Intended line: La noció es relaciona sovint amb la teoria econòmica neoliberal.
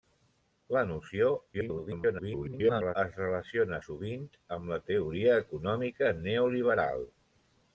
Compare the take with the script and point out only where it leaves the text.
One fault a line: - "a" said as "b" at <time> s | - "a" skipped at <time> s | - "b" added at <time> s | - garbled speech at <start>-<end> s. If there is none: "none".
- garbled speech at 1.5-3.0 s